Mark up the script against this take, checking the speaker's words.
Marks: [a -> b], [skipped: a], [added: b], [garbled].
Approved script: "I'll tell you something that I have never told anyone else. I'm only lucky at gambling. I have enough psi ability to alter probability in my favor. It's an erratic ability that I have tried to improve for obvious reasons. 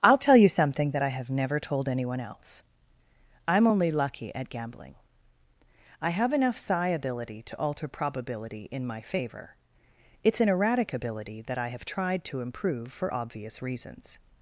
"I'll tell you something that I have never told anyone else. I'm only lucky at gambling. I have enough psi ability to alter probability in my favor. It's an erratic ability that I have tried to improve for obvious reasons.